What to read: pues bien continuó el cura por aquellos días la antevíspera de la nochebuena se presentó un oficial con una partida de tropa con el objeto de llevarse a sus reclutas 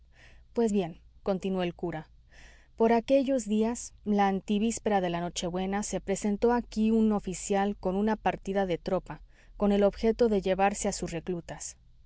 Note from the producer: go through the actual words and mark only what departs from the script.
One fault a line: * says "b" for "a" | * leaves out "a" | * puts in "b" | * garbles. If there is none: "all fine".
* puts in "aquí"